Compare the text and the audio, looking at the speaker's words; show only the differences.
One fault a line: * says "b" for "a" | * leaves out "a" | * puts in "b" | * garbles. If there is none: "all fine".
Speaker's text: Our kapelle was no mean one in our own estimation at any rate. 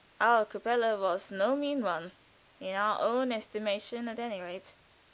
all fine